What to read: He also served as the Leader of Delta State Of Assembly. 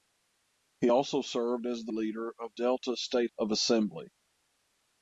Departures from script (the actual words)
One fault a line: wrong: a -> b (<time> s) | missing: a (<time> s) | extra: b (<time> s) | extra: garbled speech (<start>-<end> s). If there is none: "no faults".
no faults